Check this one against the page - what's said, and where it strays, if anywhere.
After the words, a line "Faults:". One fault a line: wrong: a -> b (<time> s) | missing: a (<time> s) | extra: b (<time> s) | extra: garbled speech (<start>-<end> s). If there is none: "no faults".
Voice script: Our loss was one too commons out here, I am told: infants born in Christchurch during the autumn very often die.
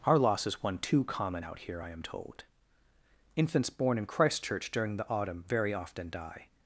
Our loss is one too common out here, I am told: infants born in Christchurch during the autumn very often die.
Faults:
wrong: was -> is (0.5 s)
wrong: commons -> common (1.0 s)